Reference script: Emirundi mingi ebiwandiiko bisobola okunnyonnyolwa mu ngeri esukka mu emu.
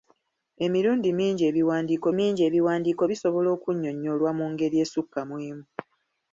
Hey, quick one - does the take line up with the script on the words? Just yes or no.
no